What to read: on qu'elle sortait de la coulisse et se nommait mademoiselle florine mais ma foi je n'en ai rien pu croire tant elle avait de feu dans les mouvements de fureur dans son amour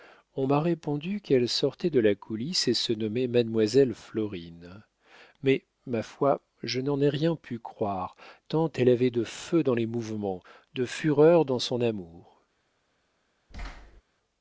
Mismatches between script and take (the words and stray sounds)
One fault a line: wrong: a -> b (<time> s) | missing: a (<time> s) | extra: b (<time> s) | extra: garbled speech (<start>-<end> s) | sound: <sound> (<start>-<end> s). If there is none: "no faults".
extra: m'a répondu (0.5 s)
sound: thud (13.5-14.0 s)